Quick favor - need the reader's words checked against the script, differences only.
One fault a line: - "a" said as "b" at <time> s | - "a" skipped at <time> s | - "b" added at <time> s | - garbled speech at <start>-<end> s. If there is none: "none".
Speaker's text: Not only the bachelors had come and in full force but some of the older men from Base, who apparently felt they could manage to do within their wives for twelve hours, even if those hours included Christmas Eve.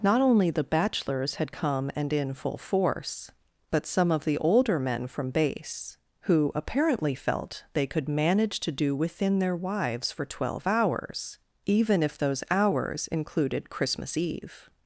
none